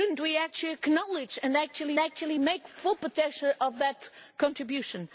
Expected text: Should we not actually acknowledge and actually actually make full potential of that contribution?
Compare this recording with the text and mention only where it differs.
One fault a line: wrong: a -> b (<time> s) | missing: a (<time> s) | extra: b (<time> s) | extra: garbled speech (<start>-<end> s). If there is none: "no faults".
no faults